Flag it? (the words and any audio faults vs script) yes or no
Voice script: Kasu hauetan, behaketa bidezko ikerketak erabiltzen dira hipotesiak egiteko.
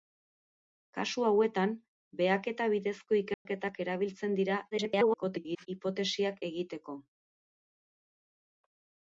yes